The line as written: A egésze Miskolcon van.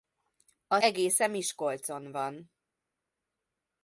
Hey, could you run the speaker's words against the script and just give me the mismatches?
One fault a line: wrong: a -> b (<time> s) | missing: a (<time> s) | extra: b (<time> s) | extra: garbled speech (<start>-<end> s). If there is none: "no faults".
no faults